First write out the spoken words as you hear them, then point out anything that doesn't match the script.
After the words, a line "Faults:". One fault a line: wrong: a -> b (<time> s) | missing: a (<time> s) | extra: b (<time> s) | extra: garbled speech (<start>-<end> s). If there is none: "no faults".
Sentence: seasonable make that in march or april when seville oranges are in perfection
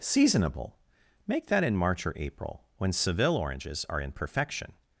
seasonable make that in march or april when seville oranges are in perfection
Faults:
no faults